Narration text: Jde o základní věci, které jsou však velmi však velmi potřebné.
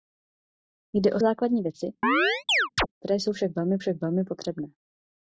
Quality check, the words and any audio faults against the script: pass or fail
fail